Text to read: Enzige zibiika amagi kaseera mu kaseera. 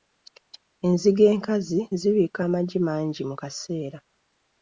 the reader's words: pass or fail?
fail